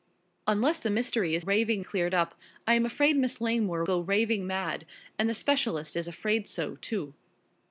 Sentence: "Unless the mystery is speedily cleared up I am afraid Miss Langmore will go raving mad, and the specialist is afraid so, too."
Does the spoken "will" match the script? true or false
false